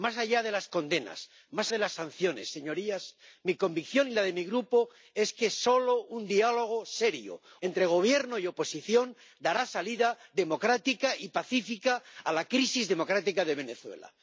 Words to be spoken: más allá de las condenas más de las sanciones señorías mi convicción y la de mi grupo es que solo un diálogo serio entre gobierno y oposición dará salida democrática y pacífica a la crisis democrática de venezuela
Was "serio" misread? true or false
false